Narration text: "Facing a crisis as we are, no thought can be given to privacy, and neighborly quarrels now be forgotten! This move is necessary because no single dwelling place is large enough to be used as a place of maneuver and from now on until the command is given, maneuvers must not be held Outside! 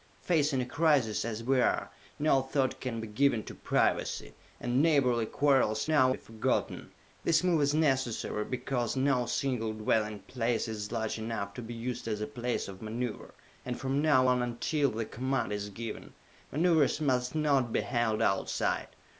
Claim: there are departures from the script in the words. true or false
false